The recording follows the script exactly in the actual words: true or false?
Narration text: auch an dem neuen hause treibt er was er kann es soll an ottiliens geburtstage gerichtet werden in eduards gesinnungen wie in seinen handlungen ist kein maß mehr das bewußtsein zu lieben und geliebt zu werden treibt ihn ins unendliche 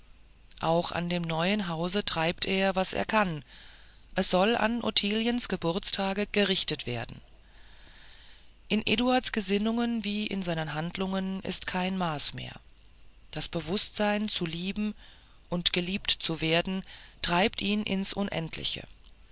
true